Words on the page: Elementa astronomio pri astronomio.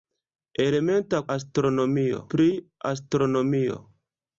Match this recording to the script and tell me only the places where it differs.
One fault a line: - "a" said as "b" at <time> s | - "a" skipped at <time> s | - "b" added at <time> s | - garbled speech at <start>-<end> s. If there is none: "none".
none